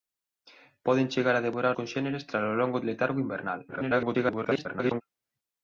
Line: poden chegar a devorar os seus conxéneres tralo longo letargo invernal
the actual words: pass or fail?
fail